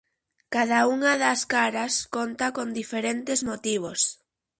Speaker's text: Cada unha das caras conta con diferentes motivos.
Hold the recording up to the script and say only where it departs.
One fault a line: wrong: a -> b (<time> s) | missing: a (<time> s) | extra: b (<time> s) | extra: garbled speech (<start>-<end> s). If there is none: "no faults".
no faults